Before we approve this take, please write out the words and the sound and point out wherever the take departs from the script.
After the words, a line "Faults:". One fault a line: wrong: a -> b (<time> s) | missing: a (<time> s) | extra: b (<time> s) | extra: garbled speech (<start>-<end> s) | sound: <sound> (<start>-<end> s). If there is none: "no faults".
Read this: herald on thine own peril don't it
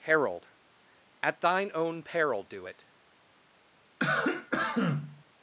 herald at thine own peril do it
Faults:
wrong: on -> at (1.2 s)
wrong: don't -> do (2.4 s)
sound: cough (4.0-5.2 s)